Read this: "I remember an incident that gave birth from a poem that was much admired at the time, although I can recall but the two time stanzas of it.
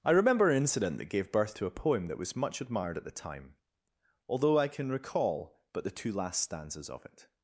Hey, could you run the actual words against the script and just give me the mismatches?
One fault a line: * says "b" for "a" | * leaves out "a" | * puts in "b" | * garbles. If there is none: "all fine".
* says "to" for "from"
* says "last" for "time"